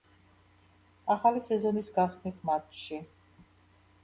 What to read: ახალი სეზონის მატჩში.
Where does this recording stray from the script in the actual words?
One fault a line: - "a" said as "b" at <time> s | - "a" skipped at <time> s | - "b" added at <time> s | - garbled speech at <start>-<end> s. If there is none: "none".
- "გახსნით" added at 2.0 s